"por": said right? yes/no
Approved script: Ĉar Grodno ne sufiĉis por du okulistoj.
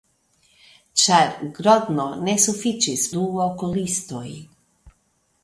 no